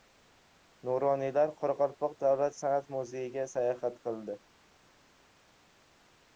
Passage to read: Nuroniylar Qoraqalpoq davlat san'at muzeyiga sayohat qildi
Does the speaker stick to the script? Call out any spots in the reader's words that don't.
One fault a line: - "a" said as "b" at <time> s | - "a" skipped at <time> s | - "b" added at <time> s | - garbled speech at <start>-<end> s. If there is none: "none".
none